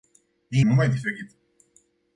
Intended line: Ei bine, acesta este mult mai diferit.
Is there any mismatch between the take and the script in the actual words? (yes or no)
yes